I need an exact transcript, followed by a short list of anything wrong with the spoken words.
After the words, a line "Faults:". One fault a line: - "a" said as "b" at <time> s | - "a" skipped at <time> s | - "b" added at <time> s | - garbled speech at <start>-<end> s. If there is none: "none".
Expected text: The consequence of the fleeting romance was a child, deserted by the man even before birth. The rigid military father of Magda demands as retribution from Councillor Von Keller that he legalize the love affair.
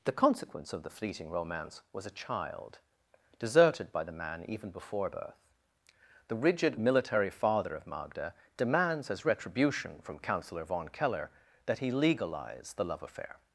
The consequence of the fleeting romance was a child, deserted by the man even before birth. The rigid military father of Magda demands as retribution from Councillor Von Keller that he legalize the love affair.
Faults:
none